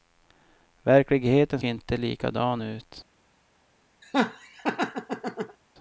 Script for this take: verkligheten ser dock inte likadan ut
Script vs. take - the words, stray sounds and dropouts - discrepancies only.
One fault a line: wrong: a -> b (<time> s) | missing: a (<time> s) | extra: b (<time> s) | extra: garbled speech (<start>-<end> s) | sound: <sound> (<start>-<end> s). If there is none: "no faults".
missing: ser dock (1.6 s)
sound: laugh (4.0-5.6 s)